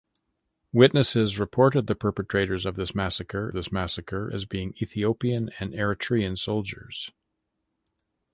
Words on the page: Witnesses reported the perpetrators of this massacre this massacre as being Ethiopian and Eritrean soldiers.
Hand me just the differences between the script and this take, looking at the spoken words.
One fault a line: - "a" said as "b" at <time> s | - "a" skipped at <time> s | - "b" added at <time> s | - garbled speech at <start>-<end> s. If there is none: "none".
none